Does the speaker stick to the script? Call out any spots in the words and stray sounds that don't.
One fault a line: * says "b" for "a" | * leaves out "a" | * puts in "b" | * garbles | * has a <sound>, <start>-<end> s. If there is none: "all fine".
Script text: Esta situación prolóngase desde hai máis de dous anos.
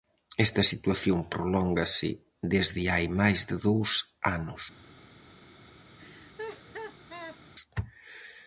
* has a laugh, 6.0-7.4 s